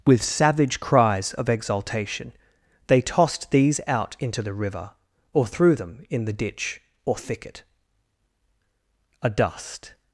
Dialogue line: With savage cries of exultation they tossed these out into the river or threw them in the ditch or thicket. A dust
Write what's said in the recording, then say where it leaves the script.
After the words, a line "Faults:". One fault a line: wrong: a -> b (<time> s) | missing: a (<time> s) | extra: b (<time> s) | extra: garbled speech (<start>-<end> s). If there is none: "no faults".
With savage cries of exultation they tossed these out into the river or threw them in the ditch or thicket. A dust
Faults:
no faults